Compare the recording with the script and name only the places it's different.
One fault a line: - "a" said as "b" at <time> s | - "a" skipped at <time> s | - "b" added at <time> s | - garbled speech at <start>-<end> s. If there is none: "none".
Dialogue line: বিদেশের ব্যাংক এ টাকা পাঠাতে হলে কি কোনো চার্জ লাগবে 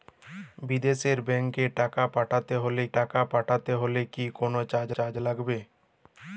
- "টাকা পাঠাতে হলে" added at 3.0 s
- "চার্জ" added at 4.9 s